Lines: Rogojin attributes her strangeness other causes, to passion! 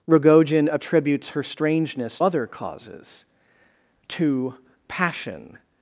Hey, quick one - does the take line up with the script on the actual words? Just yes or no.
yes